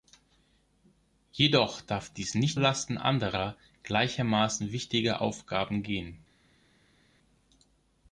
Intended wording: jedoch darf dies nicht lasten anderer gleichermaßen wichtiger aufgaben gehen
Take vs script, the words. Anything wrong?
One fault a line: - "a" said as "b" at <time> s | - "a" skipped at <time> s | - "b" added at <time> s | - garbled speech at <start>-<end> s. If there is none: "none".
none